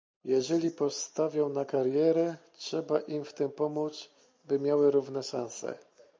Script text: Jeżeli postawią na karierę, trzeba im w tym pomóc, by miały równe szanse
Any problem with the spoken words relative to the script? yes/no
no